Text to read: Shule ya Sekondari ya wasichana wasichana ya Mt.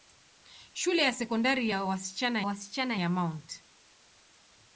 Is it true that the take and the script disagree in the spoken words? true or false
false